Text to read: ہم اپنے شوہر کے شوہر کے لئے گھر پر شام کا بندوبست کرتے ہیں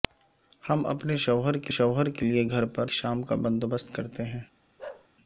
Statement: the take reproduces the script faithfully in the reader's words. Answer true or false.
true